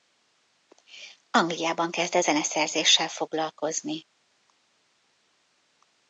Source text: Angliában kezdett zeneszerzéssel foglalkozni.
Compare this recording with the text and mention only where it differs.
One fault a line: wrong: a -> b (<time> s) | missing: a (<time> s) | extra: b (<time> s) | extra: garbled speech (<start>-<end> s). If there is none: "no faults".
no faults